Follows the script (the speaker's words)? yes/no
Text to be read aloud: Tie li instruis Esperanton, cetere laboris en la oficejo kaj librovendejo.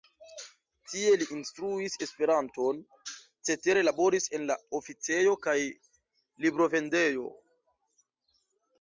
yes